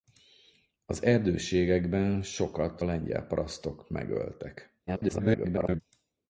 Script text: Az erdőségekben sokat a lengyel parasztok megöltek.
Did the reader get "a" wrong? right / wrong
wrong